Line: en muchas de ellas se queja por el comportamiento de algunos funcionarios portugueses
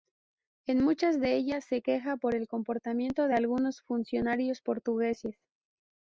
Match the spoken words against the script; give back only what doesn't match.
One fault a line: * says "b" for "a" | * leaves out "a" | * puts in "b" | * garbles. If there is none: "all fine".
all fine